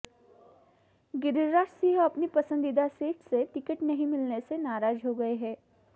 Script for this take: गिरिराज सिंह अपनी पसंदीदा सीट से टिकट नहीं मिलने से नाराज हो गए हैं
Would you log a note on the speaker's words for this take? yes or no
no